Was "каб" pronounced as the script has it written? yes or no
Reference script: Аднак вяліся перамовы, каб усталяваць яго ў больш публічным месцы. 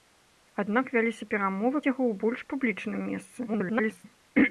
no